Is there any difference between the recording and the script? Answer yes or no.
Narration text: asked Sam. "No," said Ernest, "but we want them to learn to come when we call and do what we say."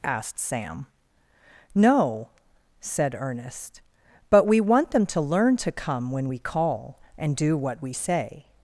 no